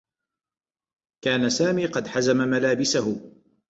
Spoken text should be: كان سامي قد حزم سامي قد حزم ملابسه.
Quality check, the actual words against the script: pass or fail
fail